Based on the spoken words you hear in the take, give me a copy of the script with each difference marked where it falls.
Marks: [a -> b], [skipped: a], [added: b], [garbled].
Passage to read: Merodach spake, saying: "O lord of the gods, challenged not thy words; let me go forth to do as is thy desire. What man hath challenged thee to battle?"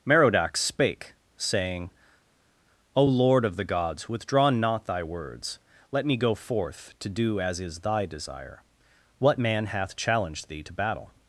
Merodach spake, saying: "O lord of the gods, [challenged -> withdraw] not thy words; let me go forth to do as is thy desire. What man hath challenged thee to battle?"